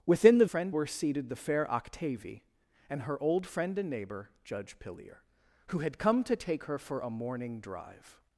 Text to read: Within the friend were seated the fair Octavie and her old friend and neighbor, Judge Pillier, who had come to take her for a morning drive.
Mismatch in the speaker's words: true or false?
false